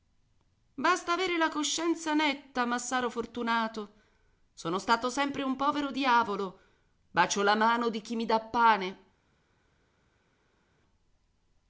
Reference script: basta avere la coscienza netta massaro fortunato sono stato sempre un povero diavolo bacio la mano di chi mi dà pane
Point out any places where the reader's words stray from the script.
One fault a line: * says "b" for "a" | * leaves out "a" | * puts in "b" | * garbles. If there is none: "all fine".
all fine